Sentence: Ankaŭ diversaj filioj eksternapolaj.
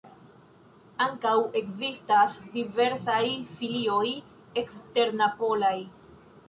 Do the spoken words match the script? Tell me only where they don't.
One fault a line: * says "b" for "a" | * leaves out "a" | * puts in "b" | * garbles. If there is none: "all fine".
* puts in "ekzistas"